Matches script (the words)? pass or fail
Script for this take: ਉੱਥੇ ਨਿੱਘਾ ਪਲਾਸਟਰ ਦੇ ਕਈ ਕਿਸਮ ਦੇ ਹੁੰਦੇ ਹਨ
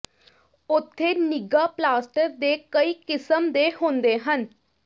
pass